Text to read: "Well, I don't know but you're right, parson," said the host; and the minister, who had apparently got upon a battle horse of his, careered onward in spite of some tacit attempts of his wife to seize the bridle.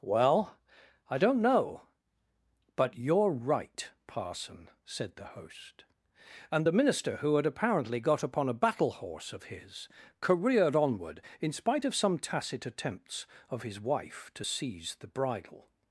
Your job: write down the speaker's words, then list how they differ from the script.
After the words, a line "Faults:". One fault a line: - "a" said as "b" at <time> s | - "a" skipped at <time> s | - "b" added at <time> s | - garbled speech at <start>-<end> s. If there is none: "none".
"Well, I don't know but you're right, parson," said the host; and the minister, who had apparently got upon a battle horse of his, careered onward in spite of some tacit attempts of his wife to seize the bridle.
Faults:
none